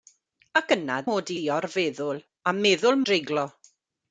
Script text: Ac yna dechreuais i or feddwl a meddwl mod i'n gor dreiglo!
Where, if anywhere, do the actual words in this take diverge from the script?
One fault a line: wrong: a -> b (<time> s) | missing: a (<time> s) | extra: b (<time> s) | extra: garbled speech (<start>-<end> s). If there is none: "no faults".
wrong: dechreuais -> mod (1.1 s)
missing: mod i'n gor (3.0 s)